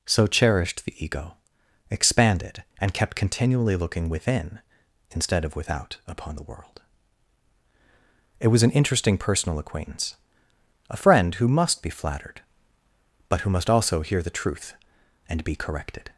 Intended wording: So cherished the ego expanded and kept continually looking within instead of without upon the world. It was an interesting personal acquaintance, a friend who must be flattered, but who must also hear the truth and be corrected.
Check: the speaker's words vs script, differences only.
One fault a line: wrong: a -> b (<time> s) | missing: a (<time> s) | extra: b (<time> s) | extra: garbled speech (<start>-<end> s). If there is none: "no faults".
no faults